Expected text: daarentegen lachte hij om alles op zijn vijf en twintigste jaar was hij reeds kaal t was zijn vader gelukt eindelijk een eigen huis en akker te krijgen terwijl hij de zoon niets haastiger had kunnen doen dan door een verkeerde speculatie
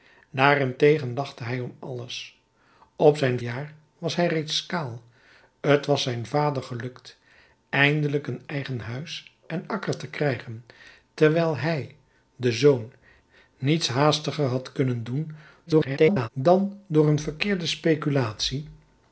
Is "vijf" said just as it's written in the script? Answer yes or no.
no